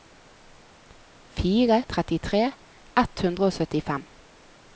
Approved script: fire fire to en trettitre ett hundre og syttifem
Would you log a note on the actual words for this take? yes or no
yes